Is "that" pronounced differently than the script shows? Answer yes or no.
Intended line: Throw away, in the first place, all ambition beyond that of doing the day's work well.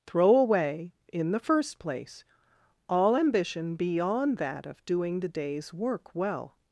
no